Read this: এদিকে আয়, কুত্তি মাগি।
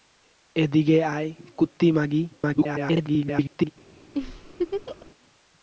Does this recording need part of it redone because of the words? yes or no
yes